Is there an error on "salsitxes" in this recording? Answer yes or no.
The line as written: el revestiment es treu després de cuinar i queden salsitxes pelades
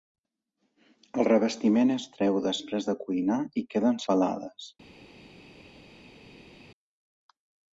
yes